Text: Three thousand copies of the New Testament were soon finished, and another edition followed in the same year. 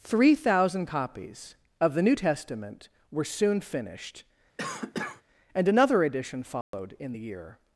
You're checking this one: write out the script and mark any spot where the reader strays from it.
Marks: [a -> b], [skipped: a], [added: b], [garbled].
Three thousand copies of the New Testament were soon finished, and another edition followed in the [skipped: same] year.